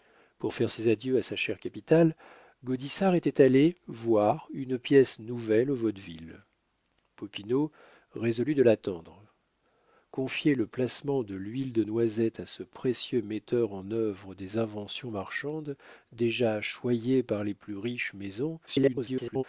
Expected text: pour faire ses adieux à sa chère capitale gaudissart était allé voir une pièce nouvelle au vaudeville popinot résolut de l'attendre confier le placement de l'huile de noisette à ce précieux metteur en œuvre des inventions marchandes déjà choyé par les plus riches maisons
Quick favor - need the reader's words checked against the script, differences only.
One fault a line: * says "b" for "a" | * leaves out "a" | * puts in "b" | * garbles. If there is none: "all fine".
* garbles